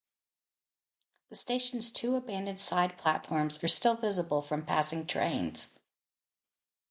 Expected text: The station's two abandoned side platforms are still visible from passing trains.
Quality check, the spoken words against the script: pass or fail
pass